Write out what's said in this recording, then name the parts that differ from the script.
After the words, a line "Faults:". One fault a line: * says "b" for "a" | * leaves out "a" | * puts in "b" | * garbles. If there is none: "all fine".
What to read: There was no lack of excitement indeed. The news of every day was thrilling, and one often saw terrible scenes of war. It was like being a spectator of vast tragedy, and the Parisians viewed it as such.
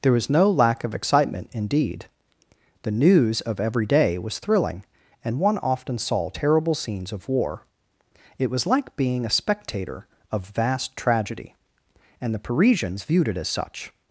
There was no lack of excitement indeed. The news of every day was thrilling, and one often saw terrible scenes of war. It was like being a spectator of vast tragedy, and the Parisians viewed it as such.
Faults:
all fine